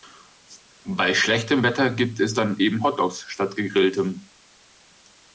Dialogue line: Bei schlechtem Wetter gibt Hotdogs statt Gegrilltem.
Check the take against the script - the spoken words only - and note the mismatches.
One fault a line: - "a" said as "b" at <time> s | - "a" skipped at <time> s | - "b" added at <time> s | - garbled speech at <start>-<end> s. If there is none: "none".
- "es dann eben" added at 2.2 s